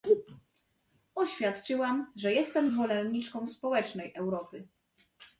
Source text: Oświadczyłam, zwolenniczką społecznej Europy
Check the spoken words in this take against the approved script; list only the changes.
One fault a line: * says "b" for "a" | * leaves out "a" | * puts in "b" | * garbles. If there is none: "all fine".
* puts in "że jestem"